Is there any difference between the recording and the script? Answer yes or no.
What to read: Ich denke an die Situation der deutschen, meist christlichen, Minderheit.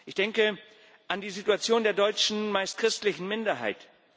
no